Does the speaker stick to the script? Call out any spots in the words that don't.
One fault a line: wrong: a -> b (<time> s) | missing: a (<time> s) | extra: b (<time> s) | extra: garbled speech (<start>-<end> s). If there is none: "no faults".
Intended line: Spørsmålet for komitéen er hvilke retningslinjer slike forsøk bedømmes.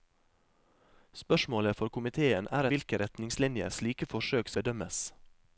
no faults